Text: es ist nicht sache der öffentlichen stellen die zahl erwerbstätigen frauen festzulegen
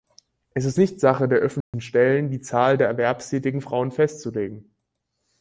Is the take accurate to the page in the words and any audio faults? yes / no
no